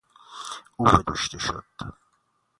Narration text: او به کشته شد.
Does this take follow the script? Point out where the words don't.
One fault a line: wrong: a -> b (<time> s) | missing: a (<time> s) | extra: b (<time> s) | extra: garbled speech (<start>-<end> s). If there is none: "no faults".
no faults